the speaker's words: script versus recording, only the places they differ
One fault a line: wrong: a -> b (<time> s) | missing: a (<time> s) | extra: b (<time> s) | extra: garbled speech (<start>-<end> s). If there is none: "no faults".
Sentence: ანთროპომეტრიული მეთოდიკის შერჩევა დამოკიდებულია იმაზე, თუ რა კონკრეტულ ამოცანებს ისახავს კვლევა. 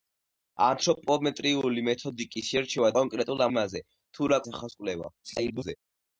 wrong: დამოკიდებულია -> კონკრეტულ (3.0 s)
missing: კონკრეტულ ამოცანებს (4.4 s)
extra: garbled speech (5.2-5.8 s)